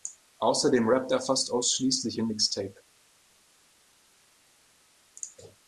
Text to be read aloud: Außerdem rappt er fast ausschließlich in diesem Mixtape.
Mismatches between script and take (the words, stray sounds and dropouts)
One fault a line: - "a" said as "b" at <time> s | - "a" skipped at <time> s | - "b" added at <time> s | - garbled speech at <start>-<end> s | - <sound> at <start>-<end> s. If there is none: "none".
- "diesem" skipped at 2.3 s